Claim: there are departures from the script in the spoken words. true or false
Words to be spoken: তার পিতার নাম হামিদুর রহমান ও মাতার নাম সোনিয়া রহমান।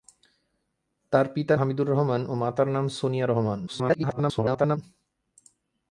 true